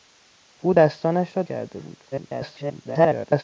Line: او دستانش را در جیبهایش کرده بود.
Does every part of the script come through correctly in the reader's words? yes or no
no